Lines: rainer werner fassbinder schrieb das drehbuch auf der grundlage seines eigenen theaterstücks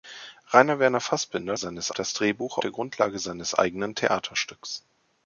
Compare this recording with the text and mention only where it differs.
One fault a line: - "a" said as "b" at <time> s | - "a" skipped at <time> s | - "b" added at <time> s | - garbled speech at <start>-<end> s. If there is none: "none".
- "schrieb" said as "seines" at 1.5 s
- "auf" skipped at 2.6 s